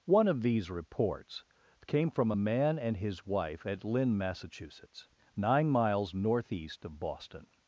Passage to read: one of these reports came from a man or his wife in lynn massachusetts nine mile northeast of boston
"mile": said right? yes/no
no